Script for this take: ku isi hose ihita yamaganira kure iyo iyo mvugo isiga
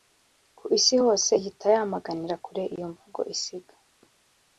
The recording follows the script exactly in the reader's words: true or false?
false